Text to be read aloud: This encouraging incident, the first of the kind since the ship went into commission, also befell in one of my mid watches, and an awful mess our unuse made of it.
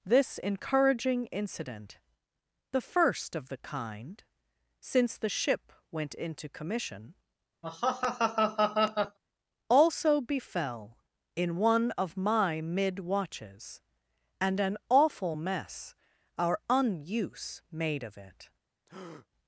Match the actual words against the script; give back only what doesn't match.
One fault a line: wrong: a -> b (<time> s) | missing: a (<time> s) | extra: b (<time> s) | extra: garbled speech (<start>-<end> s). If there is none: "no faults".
no faults